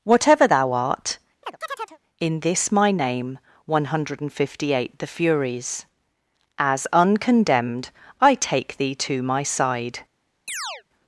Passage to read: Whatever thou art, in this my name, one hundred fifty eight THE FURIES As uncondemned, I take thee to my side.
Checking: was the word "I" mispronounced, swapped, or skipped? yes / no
no